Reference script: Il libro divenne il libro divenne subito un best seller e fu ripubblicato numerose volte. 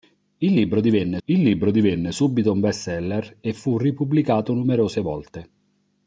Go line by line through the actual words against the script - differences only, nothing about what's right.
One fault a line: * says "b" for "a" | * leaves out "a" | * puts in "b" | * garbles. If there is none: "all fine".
all fine